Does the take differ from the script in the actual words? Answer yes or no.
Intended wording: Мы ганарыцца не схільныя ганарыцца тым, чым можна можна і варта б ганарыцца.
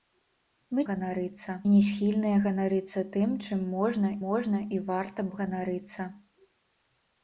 no